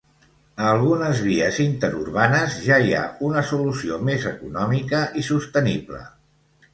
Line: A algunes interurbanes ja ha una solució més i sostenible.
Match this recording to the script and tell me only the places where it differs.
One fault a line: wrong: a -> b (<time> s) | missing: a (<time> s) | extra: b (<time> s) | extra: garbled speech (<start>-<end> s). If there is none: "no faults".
extra: vies (1.2 s)
extra: hi (2.9 s)
extra: econòmica (4.3 s)